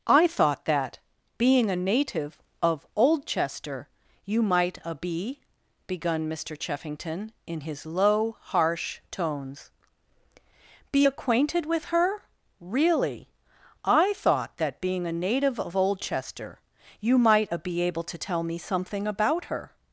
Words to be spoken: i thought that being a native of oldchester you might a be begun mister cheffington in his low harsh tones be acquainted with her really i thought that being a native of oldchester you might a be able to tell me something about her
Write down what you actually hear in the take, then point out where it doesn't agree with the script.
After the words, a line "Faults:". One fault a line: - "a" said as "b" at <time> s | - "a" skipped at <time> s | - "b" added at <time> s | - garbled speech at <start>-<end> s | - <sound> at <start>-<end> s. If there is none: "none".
i thought that being a native of oldchester you might a be begun mister cheffington in his low harsh tones be acquainted with her really i thought that being a native of oldchester you might a be able to tell me something about her
Faults:
none